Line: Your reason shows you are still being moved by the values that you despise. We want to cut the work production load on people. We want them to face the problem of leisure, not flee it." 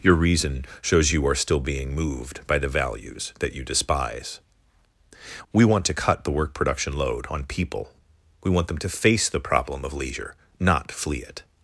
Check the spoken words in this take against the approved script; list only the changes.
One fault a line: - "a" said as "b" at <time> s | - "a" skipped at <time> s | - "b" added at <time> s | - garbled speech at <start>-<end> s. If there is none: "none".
none